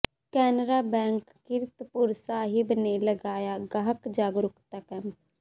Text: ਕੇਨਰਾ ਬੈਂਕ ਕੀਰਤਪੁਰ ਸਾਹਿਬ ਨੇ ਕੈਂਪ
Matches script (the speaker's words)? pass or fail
fail